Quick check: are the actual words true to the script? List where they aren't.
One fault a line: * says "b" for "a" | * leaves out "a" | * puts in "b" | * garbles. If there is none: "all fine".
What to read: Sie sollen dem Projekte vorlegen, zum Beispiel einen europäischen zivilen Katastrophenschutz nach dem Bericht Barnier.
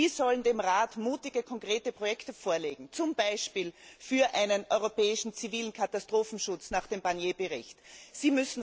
* puts in "Rat mutige konkrete"
* puts in "für"